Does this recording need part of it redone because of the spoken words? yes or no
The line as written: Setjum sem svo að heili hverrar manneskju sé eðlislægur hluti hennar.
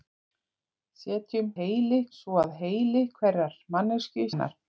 yes